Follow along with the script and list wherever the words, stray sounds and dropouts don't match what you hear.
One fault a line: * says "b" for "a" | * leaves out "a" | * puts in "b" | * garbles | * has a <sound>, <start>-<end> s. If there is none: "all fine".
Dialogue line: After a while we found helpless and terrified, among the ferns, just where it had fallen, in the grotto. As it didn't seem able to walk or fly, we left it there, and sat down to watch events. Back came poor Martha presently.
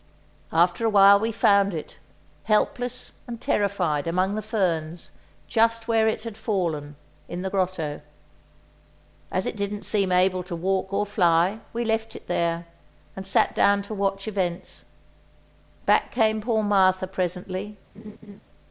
* puts in "it"
* has a laugh, 17.9-18.4 s